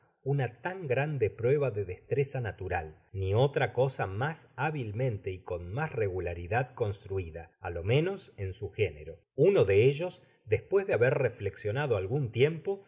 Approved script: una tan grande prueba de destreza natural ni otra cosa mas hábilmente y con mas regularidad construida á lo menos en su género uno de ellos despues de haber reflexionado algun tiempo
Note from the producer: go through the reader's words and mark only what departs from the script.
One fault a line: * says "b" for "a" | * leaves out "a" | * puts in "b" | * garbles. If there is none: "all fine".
all fine